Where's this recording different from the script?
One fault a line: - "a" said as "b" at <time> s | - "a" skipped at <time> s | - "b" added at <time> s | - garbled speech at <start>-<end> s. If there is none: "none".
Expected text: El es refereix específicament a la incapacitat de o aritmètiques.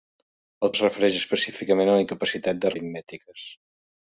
none